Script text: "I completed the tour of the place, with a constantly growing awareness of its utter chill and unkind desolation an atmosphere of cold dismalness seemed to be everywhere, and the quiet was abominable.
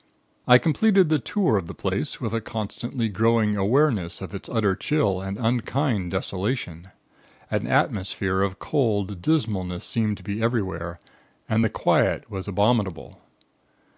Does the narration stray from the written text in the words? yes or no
no